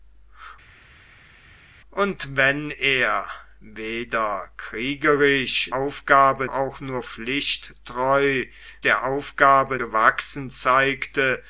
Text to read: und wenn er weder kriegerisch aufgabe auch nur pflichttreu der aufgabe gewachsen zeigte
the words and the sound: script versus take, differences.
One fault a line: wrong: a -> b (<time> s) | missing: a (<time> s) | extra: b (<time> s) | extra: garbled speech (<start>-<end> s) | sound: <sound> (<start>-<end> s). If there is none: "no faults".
no faults